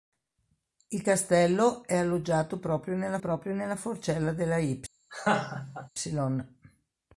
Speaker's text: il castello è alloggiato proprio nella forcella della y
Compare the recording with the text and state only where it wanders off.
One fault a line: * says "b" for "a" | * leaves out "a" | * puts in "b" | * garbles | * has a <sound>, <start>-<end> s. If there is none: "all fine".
* puts in "proprio nella"
* has a laugh, 5.1-5.9 s